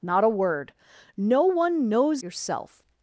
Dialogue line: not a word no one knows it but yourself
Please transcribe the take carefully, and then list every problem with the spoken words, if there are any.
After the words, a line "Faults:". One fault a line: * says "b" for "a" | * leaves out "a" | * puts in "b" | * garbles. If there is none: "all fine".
not a word no one knows yourself
Faults:
* leaves out "it but"